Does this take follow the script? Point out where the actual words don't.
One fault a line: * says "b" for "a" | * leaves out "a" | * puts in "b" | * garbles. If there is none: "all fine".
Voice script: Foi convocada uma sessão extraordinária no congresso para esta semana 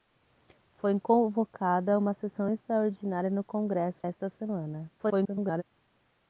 * leaves out "para"
* garbles